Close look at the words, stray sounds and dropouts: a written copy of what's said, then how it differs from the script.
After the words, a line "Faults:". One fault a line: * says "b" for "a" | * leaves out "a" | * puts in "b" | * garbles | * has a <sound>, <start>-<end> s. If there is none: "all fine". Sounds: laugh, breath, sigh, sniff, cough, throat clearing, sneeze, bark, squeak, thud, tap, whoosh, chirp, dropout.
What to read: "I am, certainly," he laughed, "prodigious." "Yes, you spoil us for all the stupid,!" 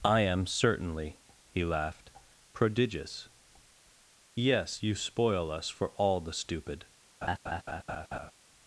"I am, certainly," he laughed, "prodigious." "Yes, you spoil us for all the stupid,!"
Faults:
* has a laugh, 7.2-8.3 s